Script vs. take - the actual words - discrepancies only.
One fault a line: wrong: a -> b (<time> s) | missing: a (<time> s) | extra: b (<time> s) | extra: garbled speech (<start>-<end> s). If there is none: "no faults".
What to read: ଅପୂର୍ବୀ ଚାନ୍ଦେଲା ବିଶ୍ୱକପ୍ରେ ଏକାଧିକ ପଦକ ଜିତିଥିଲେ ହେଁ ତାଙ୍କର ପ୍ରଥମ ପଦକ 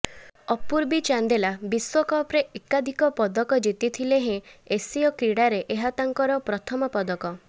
extra: ଏସୀୟ କ୍ରୀଡ଼ାରେ ଏହା (4.7 s)